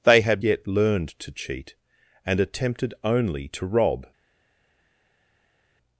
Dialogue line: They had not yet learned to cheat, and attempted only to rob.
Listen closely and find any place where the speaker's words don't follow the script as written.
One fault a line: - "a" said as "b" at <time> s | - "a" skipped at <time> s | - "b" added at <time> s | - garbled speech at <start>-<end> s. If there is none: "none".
- "not" skipped at 0.4 s